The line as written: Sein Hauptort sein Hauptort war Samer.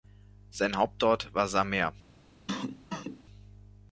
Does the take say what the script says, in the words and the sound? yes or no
no